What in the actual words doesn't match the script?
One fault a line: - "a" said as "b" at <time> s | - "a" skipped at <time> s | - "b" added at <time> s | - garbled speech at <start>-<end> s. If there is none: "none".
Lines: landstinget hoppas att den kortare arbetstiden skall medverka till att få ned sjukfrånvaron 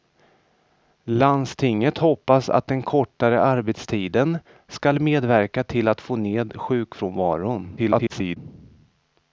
- garbled speech at 7.8-8.4 s